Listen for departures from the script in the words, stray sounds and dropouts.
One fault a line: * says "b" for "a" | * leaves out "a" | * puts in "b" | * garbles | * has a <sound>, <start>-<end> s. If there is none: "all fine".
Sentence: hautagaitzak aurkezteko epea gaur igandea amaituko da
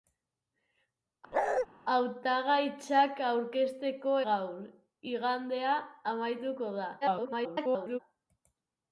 * has a bark, 1.3-1.7 s
* leaves out "epea"
* garbles